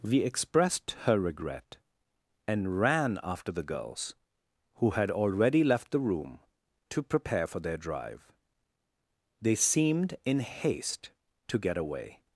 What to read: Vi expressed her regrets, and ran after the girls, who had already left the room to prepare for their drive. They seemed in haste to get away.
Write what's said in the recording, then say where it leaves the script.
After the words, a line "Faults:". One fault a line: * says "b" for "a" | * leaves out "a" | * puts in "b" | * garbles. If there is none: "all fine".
Vi expressed her regret, and ran after the girls, who had already left the room to prepare for their drive. They seemed in haste to get away.
Faults:
* says "regret" for "regrets"